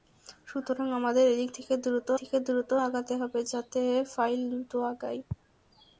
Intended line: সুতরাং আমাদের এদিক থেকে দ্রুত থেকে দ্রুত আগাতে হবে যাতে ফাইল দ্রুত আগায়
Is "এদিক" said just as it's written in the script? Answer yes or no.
yes